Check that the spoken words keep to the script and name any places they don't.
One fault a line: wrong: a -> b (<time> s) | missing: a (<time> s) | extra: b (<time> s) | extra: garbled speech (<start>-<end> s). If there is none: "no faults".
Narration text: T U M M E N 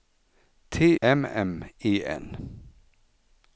missing: U (0.9 s)